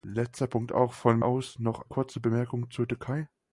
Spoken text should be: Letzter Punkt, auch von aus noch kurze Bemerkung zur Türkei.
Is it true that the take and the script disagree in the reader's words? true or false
false